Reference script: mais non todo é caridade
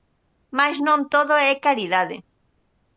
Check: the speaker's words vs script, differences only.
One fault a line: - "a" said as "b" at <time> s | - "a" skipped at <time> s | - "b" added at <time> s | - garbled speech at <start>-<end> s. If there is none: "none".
none